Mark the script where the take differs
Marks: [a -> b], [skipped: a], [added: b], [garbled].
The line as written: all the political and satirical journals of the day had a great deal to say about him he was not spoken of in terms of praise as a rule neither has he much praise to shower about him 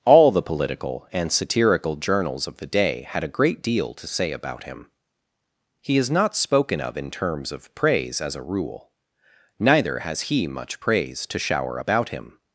all the political and satirical journals of the day had a great deal to say about him he [was -> is] not spoken of in terms of praise as a rule neither has he much praise to shower about him